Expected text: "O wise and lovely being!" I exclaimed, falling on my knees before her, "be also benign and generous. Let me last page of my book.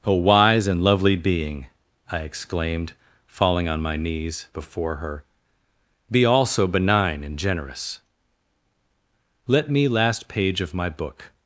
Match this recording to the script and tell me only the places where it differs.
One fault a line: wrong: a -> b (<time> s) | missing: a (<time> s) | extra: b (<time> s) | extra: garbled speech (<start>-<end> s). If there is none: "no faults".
no faults